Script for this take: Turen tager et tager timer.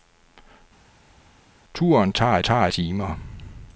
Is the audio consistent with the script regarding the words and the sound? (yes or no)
yes